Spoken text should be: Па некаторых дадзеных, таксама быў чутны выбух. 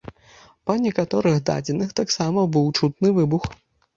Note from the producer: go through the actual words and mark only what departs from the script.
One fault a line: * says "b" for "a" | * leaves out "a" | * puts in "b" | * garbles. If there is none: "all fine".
all fine